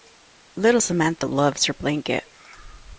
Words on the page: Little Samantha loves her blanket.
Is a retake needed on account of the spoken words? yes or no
no